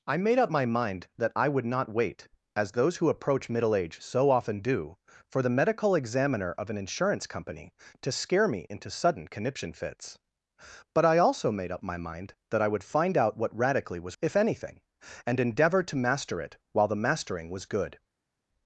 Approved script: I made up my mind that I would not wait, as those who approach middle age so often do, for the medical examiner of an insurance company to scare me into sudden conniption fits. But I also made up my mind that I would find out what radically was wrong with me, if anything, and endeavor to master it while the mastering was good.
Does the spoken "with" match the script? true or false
false